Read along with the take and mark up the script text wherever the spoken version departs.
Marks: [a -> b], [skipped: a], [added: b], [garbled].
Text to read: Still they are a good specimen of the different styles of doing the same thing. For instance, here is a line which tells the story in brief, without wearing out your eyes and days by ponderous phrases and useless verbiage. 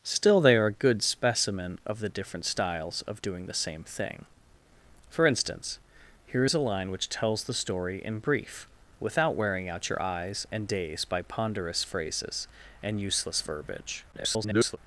Still they are a good specimen of the different styles of doing the same thing. For instance, here is a line which tells the story in brief, without wearing out your eyes and days by ponderous phrases and useless verbiage. [garbled]